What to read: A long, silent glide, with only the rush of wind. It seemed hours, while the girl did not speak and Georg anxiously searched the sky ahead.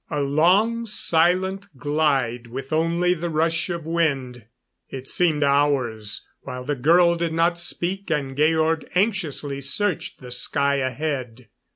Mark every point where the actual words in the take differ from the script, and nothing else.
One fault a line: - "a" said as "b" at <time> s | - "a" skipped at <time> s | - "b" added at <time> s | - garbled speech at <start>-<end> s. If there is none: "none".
none